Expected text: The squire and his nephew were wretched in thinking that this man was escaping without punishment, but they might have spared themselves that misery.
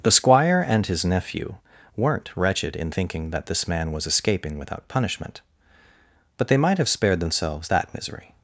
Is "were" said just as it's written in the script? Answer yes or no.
no